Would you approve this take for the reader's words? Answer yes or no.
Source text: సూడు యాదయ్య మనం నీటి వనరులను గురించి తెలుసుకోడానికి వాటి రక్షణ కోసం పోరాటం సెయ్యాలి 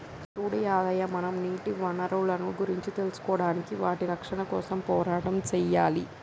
yes